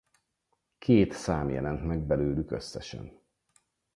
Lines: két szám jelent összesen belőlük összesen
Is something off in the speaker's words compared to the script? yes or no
yes